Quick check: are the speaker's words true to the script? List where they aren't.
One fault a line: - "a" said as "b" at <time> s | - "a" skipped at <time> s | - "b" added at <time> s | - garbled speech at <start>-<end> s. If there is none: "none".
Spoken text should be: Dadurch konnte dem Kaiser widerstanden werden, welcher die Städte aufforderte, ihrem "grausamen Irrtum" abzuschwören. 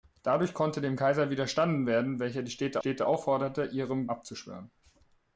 - "Städte" added at 2.8 s
- "grausamen Irrtum" skipped at 4.1 s